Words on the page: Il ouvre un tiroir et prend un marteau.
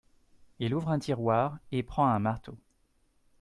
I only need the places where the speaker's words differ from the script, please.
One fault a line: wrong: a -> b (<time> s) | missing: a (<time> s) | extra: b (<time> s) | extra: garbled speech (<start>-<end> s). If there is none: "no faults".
no faults